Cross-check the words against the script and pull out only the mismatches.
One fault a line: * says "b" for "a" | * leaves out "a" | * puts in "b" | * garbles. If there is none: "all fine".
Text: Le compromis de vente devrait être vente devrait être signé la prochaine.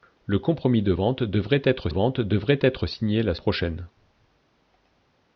all fine